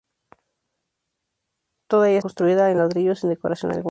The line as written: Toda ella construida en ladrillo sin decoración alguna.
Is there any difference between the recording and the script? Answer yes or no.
no